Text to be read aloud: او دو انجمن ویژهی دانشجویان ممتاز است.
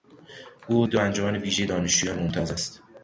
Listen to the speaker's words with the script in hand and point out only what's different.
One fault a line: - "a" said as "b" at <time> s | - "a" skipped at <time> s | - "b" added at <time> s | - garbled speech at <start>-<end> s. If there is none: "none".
none